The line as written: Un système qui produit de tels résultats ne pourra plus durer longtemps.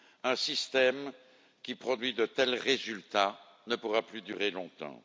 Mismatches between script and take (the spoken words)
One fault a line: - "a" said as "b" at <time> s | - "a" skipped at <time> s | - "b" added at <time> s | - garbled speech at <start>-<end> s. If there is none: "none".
none